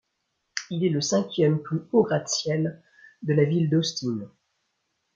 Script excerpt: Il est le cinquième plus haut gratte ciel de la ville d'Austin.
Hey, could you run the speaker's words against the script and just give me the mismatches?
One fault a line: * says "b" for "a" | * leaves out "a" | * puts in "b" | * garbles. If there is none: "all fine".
all fine